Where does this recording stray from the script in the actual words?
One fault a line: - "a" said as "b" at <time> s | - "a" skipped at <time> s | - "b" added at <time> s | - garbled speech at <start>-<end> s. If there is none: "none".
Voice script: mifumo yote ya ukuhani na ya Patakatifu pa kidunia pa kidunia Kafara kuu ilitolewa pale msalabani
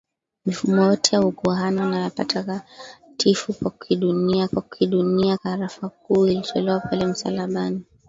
none